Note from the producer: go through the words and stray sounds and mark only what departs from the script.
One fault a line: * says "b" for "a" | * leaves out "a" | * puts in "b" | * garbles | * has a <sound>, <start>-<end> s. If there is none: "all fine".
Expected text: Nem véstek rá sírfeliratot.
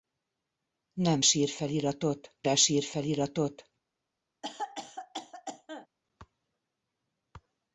* says "sírfeliratot" for "véstek"
* has a cough, 4.4-5.9 s